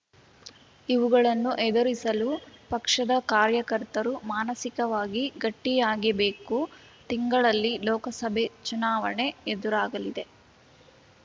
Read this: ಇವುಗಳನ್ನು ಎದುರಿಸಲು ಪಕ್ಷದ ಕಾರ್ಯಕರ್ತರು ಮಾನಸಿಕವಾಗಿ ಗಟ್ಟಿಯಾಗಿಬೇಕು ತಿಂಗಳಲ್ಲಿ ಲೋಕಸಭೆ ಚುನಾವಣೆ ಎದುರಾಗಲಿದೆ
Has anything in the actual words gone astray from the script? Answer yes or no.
no